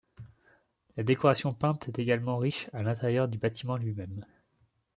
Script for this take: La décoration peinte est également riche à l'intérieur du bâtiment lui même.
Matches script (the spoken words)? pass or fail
pass